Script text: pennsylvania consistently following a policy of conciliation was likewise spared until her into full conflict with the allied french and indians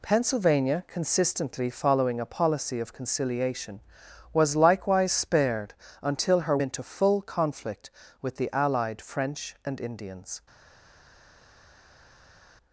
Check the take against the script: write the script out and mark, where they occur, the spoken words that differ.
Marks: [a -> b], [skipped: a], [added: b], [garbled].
pennsylvania consistently following a policy of conciliation was likewise spared until her into full conflict with the allied french and indians